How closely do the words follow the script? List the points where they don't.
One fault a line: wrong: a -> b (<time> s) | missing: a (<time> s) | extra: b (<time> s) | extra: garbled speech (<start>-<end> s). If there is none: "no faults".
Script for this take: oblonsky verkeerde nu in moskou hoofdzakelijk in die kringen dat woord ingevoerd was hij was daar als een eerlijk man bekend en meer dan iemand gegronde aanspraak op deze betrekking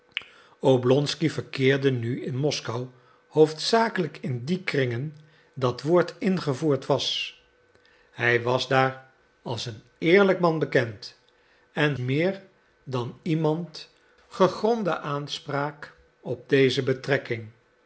no faults